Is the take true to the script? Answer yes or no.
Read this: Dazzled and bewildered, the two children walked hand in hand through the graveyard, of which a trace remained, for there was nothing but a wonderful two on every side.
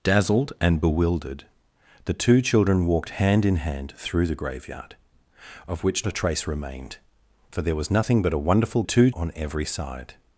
yes